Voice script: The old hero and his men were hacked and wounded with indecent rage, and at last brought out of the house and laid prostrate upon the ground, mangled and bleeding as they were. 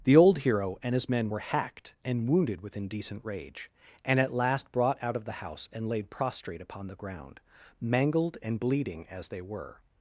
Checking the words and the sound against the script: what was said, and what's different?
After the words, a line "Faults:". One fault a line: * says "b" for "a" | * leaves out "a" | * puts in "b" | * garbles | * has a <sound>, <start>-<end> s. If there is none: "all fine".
The old hero and his men were hacked and wounded with indecent rage, and at last brought out of the house and laid prostrate upon the ground, mangled and bleeding as they were.
Faults:
all fine